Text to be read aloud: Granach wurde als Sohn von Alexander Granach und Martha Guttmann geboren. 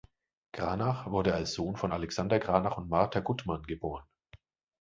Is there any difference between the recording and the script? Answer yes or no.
no